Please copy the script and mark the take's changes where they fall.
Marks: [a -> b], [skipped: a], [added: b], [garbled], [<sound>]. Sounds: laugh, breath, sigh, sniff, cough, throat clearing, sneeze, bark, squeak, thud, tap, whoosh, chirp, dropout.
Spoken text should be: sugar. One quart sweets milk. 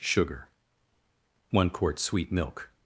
sugar. One quart [sweets -> sweet] milk.